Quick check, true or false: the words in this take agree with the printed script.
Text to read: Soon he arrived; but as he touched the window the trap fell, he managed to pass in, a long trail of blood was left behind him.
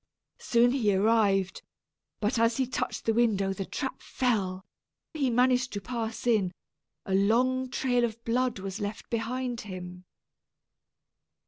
true